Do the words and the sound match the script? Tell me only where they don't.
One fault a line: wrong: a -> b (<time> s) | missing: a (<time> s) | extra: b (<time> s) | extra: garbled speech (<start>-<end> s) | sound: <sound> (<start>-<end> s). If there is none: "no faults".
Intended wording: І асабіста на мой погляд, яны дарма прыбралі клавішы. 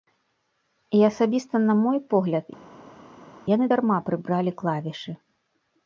no faults